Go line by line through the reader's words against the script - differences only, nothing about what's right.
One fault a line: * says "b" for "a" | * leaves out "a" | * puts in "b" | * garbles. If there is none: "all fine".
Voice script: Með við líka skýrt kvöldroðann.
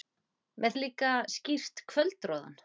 all fine